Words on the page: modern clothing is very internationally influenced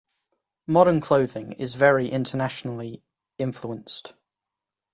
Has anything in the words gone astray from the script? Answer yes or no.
no